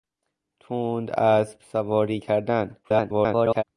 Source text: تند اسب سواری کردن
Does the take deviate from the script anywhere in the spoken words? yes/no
yes